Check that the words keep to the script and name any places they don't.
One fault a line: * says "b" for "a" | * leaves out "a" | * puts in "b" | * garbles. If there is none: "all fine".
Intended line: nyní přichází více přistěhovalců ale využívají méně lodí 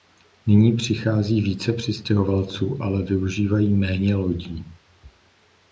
all fine